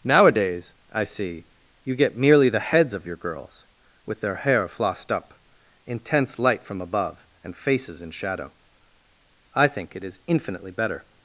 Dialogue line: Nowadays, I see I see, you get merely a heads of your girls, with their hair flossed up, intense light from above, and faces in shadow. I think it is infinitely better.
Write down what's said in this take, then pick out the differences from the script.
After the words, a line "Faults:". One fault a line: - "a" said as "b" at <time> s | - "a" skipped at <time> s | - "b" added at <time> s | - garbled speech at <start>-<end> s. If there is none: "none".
Nowadays, I see, you get merely the heads of your girls, with their hair flossed up, intense light from above, and faces in shadow. I think it is infinitely better.
Faults:
- "I see" skipped at 1.4 s
- "a" said as "the" at 2.5 s